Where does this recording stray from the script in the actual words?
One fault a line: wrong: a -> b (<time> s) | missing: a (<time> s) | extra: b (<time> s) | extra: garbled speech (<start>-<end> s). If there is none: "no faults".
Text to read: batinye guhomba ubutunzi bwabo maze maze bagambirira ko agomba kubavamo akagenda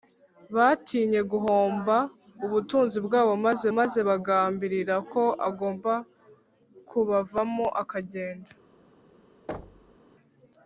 no faults